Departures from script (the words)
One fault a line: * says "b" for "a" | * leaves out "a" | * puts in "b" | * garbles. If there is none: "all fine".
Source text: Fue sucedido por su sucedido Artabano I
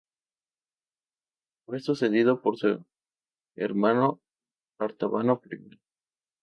* says "hermano" for "sucedido"